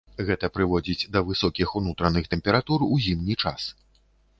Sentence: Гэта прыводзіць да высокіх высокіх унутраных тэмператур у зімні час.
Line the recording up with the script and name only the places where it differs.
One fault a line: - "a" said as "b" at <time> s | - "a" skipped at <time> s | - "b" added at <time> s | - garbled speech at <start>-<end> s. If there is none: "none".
- "высокіх" skipped at 1.8 s